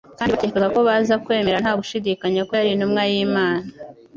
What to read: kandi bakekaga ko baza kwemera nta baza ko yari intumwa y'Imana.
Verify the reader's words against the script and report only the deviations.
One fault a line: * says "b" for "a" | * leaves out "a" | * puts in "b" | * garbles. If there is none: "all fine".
* says "gushidikanya" for "baza"